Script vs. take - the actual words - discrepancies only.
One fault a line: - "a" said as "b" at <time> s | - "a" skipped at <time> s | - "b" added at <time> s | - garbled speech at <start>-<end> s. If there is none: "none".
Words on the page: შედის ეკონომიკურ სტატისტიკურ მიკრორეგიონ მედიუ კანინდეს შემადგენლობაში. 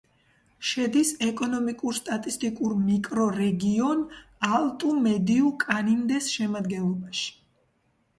- "ალტუ" added at 4.6 s